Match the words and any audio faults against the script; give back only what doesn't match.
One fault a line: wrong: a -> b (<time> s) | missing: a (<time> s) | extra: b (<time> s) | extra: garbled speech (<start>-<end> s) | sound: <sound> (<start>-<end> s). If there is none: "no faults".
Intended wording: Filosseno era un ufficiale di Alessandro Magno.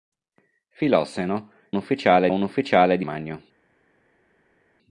wrong: era -> ufficiale (1.8 s)
missing: Alessandro (3.1 s)